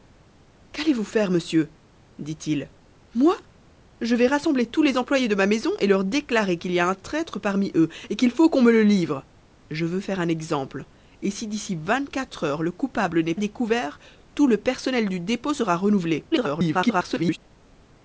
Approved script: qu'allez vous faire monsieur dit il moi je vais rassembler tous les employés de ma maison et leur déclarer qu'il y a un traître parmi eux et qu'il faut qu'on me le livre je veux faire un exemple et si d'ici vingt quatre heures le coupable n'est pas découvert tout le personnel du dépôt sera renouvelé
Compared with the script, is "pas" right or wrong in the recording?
wrong